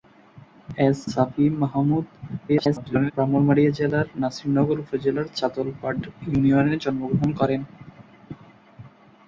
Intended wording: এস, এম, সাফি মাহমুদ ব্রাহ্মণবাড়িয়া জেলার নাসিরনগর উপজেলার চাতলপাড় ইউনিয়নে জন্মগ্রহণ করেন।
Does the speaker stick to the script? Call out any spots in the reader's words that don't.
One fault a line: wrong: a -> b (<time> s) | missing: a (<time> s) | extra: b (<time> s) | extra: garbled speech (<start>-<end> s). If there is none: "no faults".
missing: এম (1.0 s)
extra: garbled speech (2.5-3.1 s)